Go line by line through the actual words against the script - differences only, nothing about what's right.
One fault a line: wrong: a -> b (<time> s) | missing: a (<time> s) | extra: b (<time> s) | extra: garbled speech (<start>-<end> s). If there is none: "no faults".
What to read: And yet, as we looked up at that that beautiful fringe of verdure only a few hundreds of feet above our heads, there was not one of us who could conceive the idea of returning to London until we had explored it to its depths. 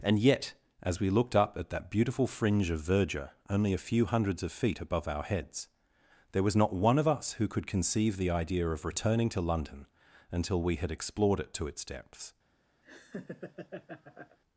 missing: that (1.9 s)